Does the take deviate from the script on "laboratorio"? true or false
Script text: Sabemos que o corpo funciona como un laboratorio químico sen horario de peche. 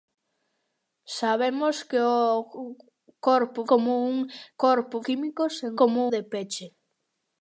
true